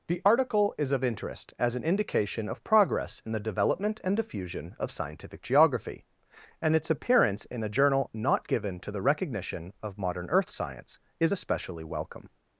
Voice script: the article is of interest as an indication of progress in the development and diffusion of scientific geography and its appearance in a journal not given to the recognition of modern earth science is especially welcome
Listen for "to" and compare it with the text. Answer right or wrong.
right